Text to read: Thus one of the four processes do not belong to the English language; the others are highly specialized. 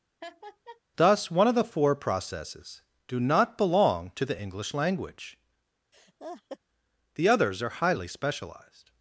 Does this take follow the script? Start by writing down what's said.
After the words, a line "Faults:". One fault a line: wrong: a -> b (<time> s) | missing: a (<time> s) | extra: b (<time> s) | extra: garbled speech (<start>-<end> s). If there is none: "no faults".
Thus one of the four processes do not belong to the English language; the others are highly specialized.
Faults:
no faults